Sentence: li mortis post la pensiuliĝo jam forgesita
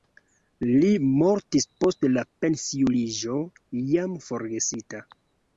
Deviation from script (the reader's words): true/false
false